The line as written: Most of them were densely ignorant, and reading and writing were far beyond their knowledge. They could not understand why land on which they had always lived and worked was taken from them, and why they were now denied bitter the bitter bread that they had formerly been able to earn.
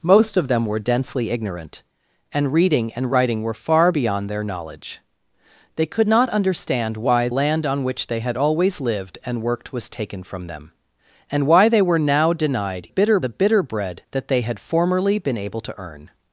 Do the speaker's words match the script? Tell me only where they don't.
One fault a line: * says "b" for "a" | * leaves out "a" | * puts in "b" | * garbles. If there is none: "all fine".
all fine